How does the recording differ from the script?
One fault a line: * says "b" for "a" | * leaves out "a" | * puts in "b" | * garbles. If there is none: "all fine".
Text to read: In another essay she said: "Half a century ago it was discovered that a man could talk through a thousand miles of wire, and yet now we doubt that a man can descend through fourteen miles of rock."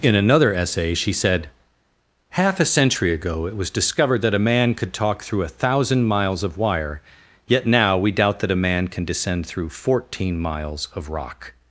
* leaves out "and"